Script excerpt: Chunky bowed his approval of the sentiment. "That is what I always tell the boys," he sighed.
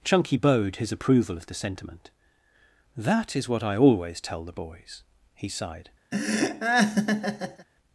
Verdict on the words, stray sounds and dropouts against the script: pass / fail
fail